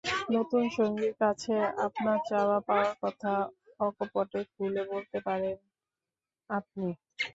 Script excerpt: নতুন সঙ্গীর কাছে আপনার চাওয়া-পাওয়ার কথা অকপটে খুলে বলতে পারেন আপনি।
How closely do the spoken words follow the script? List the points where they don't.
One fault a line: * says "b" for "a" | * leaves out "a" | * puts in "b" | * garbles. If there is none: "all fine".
all fine